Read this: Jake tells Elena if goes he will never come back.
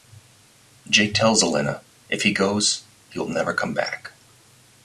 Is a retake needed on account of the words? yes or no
yes